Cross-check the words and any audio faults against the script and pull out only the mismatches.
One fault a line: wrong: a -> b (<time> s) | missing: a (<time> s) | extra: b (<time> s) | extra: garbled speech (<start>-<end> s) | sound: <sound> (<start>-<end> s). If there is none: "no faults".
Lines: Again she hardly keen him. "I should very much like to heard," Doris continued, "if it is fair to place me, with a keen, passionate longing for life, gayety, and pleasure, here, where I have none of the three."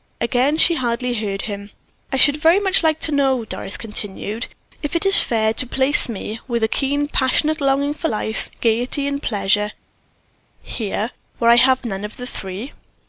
wrong: keen -> heard (1.1 s)
wrong: heard -> know (3.1 s)